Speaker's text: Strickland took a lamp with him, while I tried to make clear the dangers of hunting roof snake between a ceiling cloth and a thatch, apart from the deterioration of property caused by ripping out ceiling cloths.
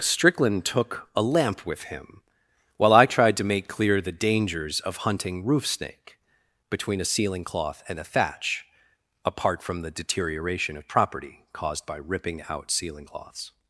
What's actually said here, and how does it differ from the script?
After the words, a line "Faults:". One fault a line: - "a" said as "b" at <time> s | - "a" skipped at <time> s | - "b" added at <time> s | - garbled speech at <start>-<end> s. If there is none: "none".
Strickland took a lamp with him, while I tried to make clear the dangers of hunting roof snake between a ceiling cloth and a thatch, apart from the deterioration of property caused by ripping out ceiling cloths.
Faults:
none